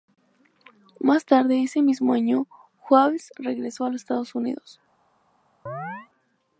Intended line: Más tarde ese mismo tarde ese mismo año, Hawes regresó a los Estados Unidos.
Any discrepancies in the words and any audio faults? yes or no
yes